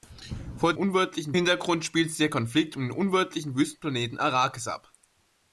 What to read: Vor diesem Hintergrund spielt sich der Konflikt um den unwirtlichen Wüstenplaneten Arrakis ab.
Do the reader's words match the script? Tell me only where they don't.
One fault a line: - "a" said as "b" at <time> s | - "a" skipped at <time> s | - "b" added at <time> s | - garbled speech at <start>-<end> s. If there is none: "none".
- "diesem" said as "unwirtlichen" at 0.7 s